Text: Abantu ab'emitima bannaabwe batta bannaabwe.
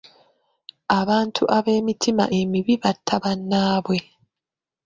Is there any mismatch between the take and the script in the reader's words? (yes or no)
yes